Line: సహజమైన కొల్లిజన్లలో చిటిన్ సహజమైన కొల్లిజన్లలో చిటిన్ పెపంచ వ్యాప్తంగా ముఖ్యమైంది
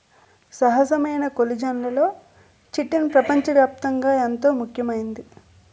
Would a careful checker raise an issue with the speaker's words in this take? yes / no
yes